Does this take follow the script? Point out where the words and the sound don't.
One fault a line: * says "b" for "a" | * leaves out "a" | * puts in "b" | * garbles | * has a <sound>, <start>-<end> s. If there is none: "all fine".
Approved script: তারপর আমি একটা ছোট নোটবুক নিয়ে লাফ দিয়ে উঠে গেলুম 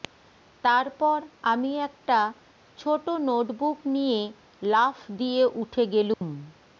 * has a dropout, 6.1-6.2 s